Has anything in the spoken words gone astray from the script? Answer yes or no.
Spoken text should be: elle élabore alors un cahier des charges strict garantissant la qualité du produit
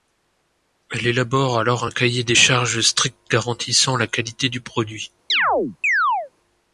no